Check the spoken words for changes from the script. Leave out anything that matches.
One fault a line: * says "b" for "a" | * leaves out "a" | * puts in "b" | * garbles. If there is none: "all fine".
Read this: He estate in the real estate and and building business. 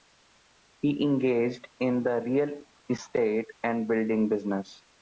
* says "engaged" for "estate"
* leaves out "and"